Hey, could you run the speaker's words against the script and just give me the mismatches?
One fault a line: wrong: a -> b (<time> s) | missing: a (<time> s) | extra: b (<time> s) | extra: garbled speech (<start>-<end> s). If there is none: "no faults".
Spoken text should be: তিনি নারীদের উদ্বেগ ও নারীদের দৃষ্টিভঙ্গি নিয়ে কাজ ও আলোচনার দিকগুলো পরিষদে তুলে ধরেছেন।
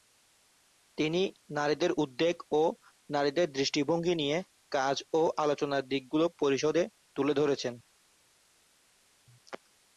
no faults